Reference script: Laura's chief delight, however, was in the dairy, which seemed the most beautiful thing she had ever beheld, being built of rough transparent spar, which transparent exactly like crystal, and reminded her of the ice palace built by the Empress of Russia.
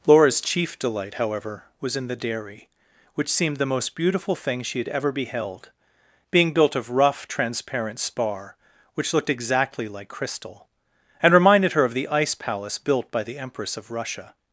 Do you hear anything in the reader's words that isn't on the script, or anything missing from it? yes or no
yes